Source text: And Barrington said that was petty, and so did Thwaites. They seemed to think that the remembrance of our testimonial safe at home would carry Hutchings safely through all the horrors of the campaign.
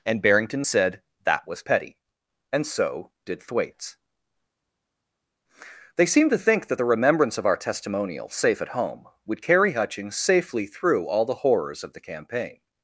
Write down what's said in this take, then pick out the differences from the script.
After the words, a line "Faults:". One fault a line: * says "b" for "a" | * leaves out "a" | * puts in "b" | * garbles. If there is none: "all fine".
And Barrington said that was petty, and so did Thwaites. They seemed to think that the remembrance of our testimonial safe at home would carry Hutchings safely through all the horrors of the campaign.
Faults:
all fine